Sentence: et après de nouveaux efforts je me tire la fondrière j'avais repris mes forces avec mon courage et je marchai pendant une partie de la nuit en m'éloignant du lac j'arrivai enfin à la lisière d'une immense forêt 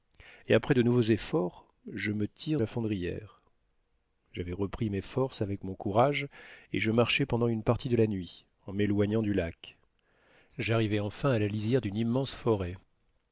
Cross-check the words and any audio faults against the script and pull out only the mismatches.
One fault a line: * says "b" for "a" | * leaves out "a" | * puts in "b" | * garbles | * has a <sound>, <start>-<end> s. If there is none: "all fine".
all fine